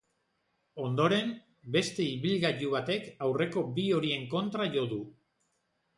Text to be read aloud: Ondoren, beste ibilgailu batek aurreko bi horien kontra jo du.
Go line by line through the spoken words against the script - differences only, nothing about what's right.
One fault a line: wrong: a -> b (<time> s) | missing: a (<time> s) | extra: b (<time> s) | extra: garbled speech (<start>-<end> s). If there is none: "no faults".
no faults